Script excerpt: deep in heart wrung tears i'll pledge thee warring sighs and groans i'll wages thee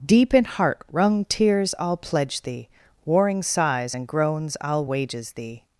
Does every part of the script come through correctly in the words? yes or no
yes